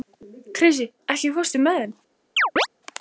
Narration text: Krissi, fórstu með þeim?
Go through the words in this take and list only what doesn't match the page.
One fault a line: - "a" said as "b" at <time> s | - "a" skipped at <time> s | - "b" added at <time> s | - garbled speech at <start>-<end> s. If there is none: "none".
- "ekki" added at 1.1 s